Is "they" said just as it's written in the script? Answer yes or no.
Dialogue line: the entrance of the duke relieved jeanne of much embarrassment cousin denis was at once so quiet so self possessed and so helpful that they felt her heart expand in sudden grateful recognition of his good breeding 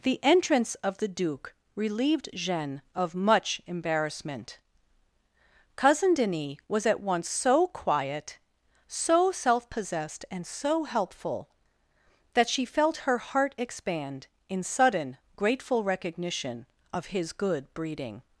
no